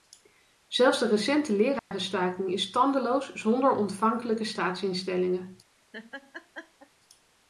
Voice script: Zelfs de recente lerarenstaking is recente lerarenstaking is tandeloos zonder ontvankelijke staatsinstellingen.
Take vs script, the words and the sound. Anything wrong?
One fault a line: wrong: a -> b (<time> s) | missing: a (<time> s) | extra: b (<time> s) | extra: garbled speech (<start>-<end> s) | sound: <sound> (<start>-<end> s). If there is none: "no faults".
sound: dropout (1.8-1.9 s)
missing: recente lerarenstaking is (2.7 s)
sound: laugh (5.9-6.9 s)